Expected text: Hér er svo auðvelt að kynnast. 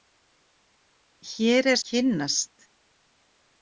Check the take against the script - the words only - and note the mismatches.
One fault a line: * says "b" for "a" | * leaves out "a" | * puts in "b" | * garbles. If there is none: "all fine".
* leaves out "svo auðvelt"